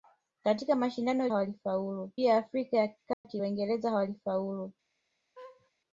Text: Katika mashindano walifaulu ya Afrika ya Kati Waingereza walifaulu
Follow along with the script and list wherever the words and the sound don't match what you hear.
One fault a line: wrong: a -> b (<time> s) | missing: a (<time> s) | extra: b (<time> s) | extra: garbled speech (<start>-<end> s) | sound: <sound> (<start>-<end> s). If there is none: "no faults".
sound: dropout (3.1-3.2 s)
sound: laugh (5.4-5.7 s)